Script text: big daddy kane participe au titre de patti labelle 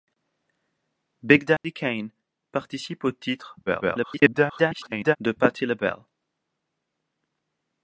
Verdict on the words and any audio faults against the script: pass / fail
fail